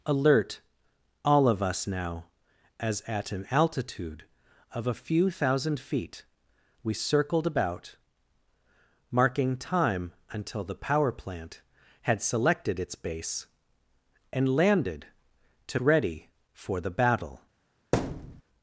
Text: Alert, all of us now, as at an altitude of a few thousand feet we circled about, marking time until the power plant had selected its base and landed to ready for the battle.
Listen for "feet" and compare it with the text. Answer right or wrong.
right